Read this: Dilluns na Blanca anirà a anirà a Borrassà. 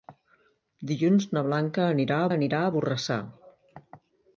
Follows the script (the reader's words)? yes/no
yes